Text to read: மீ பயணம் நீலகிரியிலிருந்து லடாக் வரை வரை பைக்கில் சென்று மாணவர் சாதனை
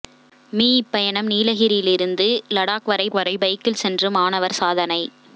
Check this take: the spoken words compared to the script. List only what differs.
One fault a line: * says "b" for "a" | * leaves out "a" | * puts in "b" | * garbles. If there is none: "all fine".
all fine